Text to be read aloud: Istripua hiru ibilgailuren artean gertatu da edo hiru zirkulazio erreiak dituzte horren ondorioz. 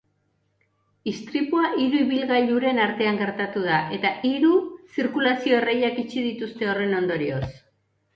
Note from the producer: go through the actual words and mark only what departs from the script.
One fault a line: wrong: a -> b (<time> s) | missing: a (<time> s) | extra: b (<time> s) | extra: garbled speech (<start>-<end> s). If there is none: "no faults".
wrong: edo -> eta (4.0 s)
extra: itxi (6.0 s)